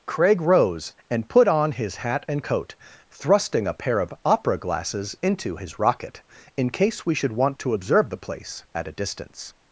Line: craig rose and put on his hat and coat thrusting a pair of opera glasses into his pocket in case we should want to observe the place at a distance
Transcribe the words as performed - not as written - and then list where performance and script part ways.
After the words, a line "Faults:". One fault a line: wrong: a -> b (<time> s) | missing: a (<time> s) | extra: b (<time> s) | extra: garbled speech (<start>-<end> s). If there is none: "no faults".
craig rose and put on his hat and coat thrusting a pair of opera glasses into his rocket in case we should want to observe the place at a distance
Faults:
wrong: pocket -> rocket (5.8 s)